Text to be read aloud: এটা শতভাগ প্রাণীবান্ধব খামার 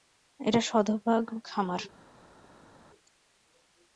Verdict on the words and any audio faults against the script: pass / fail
fail